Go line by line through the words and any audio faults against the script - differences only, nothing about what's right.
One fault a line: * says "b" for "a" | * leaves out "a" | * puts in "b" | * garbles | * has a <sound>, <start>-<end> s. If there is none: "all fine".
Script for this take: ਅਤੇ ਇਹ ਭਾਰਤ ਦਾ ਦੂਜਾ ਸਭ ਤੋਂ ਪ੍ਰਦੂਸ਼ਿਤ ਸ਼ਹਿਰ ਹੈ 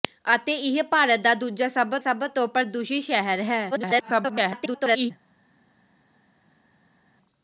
* puts in "ਸਭ"
* garbles